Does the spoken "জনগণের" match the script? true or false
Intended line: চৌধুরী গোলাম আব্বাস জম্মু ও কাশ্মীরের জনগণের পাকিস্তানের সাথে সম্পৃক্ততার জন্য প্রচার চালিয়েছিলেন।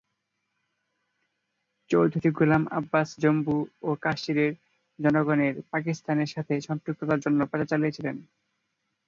true